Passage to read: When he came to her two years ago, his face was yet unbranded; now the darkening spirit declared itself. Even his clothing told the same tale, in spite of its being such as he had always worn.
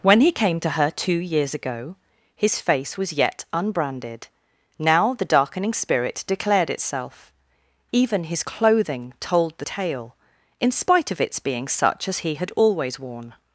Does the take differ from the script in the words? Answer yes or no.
yes